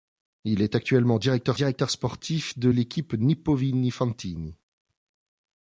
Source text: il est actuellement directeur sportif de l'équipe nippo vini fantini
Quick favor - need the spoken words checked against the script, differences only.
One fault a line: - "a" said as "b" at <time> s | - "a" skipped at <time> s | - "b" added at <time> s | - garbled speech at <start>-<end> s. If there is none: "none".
- "directeur" added at 1.5 s